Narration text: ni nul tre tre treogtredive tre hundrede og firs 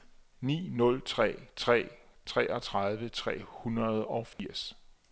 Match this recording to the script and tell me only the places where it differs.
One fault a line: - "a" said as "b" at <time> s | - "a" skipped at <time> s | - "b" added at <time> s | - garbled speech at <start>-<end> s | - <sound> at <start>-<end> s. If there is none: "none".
- dropout at 4.3-4.4 s